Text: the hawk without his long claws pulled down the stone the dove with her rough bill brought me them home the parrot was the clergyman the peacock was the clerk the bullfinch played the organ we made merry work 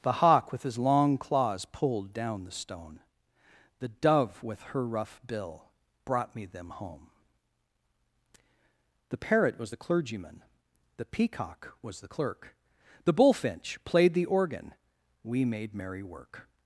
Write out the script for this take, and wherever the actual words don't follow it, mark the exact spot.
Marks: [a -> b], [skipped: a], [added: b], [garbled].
the hawk [without -> with] his long claws pulled down the stone the dove with her rough bill brought me them home the parrot was the clergyman the peacock was the clerk the bullfinch played the organ we made merry work